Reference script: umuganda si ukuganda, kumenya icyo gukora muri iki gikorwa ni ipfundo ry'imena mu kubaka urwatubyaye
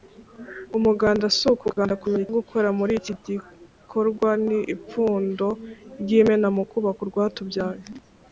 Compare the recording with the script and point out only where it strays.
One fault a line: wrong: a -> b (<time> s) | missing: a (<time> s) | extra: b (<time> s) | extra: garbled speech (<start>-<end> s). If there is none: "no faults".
missing: icyo (2.2 s)